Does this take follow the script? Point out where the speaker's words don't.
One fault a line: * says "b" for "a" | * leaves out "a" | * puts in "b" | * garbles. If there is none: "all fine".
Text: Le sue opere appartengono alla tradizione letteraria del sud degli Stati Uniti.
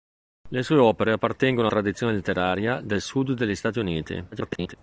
* leaves out "alla"
* garbles